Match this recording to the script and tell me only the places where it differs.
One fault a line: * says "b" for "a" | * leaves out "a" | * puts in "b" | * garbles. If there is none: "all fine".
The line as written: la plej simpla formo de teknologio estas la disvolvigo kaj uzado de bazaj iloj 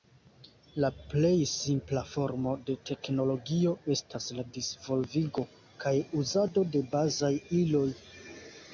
all fine